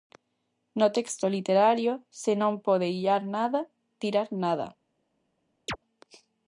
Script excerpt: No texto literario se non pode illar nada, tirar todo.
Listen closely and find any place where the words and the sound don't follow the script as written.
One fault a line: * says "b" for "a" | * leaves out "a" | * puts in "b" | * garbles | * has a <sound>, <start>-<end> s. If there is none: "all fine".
* says "nada" for "todo"
* has a chirp, 5.7-5.8 s